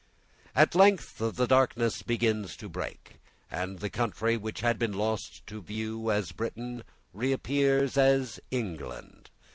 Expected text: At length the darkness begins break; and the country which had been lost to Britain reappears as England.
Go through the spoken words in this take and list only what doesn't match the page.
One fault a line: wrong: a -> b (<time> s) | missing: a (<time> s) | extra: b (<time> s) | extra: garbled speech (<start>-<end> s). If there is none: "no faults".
extra: to (2.6 s)
extra: view as (5.6 s)